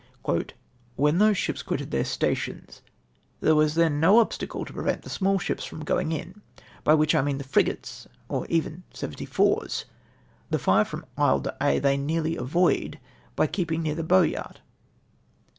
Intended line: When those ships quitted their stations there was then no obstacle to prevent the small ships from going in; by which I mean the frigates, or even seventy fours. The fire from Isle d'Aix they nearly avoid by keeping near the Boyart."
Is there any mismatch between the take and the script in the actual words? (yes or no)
no